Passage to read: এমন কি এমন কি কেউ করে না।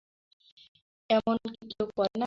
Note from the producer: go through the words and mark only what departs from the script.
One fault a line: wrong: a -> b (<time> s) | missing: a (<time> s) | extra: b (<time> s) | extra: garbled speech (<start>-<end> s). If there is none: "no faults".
missing: এমন কি (1.6 s)